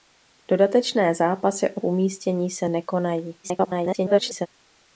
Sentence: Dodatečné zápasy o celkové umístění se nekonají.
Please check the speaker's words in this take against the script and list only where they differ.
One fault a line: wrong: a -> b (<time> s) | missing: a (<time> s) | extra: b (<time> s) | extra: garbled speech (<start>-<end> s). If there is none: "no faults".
missing: celkové (1.8 s)
extra: garbled speech (3.4-4.5 s)